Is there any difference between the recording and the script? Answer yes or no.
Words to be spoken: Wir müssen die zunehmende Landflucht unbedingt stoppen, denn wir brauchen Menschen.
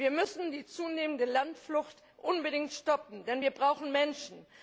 no